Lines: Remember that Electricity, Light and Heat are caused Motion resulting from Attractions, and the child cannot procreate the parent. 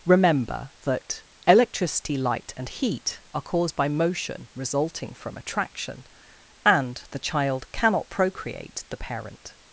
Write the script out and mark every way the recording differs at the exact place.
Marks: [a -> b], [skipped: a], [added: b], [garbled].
Remember that Electricity, Light and Heat are caused [added: by] Motion resulting from [Attractions, -> Attraction] and the child cannot procreate the parent.